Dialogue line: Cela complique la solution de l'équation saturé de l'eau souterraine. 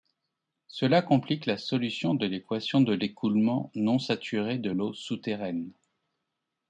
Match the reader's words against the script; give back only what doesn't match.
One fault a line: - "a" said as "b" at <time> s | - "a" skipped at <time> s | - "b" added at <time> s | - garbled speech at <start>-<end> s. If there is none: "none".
- "de l'écoulement non" added at 2.8 s